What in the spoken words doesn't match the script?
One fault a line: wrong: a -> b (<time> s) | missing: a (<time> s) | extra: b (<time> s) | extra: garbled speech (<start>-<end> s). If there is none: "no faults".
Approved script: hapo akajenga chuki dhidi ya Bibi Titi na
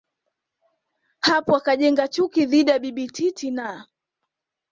no faults